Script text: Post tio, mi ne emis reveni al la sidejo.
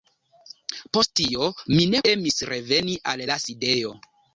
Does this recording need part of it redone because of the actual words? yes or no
no